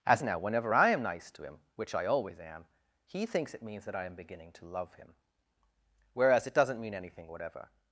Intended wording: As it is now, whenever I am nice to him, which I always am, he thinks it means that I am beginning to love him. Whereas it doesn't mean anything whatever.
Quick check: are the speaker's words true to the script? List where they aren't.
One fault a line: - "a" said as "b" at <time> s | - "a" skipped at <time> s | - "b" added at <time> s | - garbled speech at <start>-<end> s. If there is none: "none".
- "it is" skipped at 0.2 s